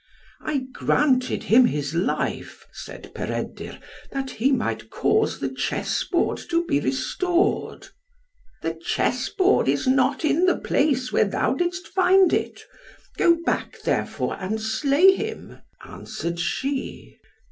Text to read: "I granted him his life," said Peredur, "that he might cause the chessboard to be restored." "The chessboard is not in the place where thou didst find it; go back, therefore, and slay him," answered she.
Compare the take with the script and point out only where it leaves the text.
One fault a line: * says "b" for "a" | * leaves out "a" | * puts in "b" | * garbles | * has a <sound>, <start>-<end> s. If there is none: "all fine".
all fine